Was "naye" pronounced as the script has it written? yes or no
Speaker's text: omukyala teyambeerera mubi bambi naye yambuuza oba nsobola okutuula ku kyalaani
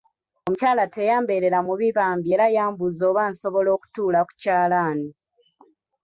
no